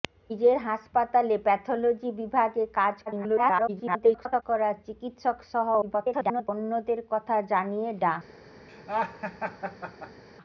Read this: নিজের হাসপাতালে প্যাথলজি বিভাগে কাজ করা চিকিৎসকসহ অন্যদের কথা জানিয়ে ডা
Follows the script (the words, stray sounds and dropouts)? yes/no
no